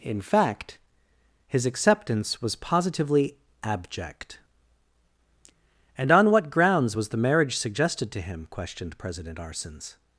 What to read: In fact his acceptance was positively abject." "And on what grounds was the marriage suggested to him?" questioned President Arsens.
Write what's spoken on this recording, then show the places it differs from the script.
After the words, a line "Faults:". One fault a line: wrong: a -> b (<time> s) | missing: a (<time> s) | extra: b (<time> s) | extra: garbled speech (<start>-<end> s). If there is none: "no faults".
In fact his acceptance was positively abject." "And on what grounds was the marriage suggested to him?" questioned President Arsens.
Faults:
no faults